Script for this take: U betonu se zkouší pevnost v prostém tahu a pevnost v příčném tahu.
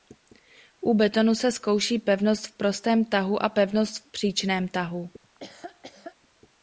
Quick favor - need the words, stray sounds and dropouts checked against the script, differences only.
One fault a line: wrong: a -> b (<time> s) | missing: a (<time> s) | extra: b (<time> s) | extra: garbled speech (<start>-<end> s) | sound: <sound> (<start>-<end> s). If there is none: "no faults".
sound: laugh (5.2-6.2 s)